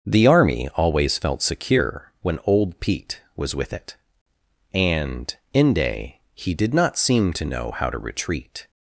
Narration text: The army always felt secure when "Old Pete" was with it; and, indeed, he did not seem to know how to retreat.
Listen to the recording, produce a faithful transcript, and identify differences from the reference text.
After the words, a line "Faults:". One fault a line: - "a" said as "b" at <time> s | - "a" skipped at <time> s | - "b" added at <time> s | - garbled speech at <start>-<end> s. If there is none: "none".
The army always felt secure when "Old Pete" was with it; and, inde, he did not seem to know how to retreat.
Faults:
- "indeed" said as "inde" at 5.5 s